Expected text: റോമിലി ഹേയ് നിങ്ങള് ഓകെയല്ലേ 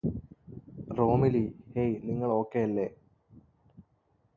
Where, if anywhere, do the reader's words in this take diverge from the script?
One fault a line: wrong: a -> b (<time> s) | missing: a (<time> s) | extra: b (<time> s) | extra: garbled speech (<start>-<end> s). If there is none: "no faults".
no faults